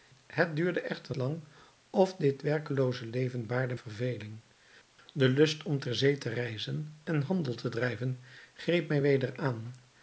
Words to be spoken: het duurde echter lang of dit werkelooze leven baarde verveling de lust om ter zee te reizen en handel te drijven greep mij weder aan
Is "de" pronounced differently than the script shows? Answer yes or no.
no